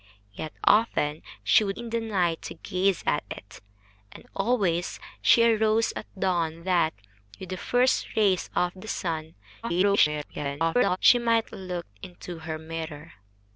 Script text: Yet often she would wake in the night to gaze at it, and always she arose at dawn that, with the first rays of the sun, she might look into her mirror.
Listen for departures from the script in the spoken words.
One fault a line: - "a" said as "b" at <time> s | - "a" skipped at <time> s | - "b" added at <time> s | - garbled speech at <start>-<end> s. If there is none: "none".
- "wake" skipped at 1.8 s
- garbled speech at 9.6-11.0 s